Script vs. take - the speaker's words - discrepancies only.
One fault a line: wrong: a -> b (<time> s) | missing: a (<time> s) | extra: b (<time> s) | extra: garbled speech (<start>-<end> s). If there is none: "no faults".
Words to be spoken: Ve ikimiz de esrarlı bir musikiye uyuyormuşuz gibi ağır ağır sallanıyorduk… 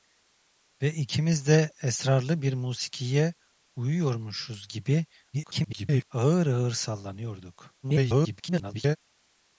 extra: garbled speech (5.3-6.0 s)
extra: garbled speech (7.8-9.0 s)